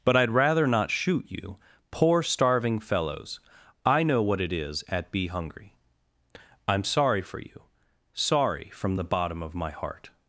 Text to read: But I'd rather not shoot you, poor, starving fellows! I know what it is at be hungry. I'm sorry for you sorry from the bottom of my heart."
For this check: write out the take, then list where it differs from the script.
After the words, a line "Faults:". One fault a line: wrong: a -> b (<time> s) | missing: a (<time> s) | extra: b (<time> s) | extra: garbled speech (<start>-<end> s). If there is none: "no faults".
But I'd rather not shoot you, poor, starving fellows! I know what it is at be hungry. I'm sorry for you sorry from the bottom of my heart."
Faults:
no faults